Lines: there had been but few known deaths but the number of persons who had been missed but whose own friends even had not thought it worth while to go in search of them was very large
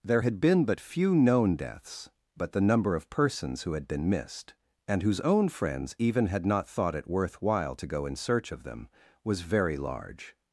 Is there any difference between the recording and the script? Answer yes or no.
yes